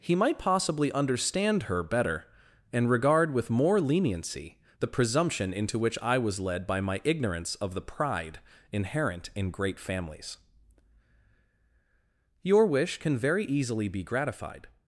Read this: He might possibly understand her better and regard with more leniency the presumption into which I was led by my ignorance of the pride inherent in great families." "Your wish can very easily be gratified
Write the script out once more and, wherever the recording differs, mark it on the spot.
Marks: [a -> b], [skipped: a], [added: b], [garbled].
He might possibly understand her better and regard with more leniency the presumption into which I was led by my ignorance of the pride inherent in great families." "Your wish can very easily be gratified